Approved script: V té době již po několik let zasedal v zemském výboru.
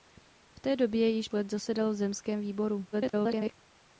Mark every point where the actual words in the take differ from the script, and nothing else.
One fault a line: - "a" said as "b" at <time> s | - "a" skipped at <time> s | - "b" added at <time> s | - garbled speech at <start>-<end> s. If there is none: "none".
- "po několik" skipped at 1.3 s
- garbled speech at 2.9-3.5 s